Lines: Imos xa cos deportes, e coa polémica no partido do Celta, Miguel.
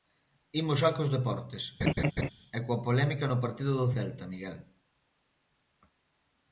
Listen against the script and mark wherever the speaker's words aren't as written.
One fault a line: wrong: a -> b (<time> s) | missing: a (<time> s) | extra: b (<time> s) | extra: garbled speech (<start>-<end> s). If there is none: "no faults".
no faults